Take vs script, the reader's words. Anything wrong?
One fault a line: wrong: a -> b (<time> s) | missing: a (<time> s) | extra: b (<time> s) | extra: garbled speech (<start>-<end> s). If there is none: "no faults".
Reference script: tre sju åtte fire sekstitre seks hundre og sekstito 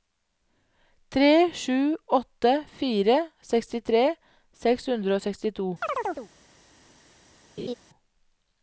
no faults